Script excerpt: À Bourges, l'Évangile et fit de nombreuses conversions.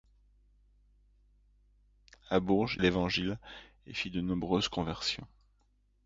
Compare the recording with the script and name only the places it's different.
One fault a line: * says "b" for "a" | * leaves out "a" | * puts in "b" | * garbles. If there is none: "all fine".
all fine